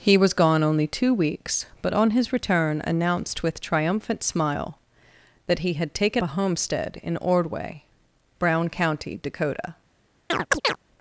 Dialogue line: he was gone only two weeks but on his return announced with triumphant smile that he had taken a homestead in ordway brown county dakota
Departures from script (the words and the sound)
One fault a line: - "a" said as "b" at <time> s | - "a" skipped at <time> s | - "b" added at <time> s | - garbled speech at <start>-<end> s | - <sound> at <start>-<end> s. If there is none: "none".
- chirp at 10.3-10.8 s